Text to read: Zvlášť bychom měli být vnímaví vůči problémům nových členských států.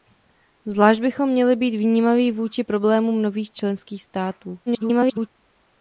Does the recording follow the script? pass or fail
fail